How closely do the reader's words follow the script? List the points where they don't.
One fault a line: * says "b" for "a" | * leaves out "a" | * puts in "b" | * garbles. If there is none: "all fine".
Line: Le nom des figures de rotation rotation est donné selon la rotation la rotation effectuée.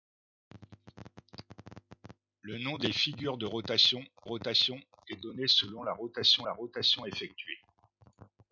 all fine